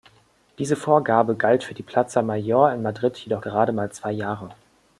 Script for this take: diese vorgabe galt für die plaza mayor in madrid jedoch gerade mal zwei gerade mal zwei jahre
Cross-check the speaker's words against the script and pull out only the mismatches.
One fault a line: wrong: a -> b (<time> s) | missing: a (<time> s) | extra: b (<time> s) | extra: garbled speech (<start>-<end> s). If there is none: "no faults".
missing: gerade mal zwei (4.1 s)